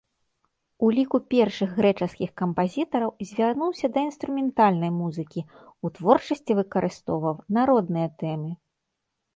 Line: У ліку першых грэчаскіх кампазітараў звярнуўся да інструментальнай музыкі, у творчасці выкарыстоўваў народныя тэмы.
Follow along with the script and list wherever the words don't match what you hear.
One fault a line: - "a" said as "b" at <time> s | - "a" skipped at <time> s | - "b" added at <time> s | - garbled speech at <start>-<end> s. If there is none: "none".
none